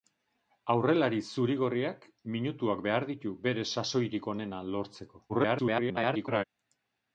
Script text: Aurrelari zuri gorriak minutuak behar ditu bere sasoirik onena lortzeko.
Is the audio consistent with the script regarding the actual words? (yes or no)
no